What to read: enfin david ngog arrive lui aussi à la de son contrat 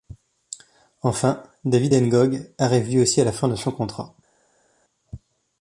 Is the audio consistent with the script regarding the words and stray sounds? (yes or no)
no